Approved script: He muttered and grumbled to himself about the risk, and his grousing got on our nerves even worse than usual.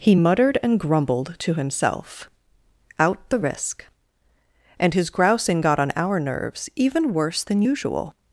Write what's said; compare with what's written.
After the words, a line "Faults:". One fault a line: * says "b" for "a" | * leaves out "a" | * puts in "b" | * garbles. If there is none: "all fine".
He muttered and grumbled to himself out the risk, and his grousing got on our nerves even worse than usual.
Faults:
* says "out" for "about"